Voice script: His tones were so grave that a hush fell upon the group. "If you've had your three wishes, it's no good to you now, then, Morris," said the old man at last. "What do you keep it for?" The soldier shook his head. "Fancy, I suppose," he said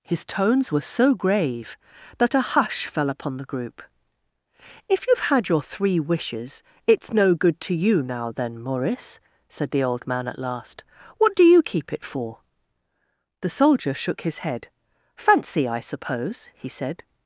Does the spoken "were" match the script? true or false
true